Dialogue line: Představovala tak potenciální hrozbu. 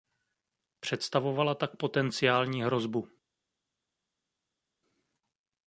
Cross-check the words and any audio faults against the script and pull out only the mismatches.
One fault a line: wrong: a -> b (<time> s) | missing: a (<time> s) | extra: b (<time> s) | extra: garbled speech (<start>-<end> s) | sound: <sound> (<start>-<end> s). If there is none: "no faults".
no faults